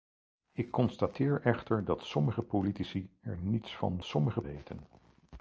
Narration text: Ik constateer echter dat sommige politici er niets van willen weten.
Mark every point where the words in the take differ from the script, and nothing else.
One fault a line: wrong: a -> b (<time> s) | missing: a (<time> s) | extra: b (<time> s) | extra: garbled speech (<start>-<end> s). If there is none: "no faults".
wrong: willen -> sommige (4.0 s)